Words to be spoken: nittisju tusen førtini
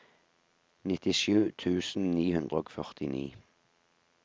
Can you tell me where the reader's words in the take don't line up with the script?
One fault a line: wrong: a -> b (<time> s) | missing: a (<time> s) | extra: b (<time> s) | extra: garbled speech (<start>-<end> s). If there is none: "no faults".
extra: ni hundre og (2.1 s)